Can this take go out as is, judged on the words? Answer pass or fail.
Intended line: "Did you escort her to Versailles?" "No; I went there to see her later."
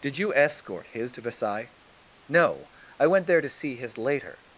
fail